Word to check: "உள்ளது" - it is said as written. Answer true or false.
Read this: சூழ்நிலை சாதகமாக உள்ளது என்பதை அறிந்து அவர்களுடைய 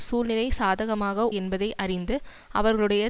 false